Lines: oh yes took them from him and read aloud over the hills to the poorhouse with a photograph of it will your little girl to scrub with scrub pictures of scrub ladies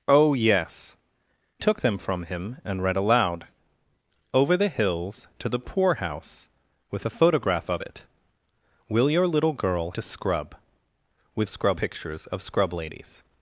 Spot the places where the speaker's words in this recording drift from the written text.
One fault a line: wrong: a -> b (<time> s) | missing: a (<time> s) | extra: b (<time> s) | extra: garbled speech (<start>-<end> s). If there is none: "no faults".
no faults